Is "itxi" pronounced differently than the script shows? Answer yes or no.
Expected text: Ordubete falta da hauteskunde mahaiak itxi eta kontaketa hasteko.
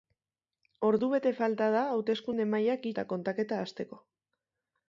yes